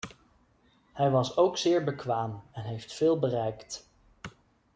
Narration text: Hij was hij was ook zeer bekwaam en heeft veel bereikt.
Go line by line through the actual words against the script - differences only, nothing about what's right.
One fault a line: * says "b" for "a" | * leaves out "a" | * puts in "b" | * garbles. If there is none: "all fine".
* leaves out "hij was"